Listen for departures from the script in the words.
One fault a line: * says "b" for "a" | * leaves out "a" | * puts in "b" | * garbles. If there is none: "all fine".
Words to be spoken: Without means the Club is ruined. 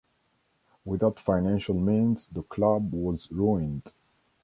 * puts in "financial"
* says "was" for "is"